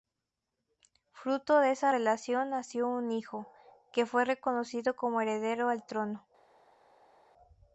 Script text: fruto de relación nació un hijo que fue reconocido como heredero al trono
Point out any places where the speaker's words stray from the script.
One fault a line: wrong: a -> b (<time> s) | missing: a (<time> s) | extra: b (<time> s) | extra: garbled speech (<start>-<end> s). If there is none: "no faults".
extra: esa (1.7 s)